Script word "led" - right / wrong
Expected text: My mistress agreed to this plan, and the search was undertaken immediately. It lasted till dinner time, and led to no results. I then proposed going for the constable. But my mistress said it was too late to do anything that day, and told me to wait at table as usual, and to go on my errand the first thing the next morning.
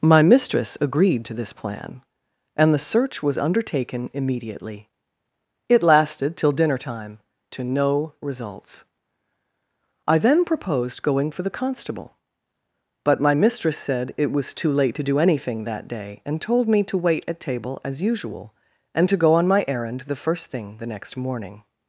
wrong